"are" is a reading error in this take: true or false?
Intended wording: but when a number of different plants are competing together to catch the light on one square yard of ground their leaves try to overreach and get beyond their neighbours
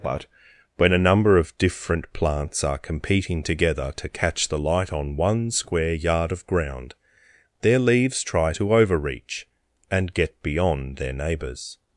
false